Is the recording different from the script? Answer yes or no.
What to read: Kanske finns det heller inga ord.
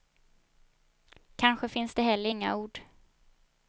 no